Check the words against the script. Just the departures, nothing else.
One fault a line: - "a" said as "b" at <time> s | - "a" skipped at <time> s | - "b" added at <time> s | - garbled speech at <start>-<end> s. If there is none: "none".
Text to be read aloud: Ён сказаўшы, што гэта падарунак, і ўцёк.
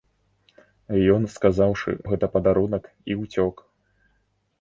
- "што" skipped at 1.9 s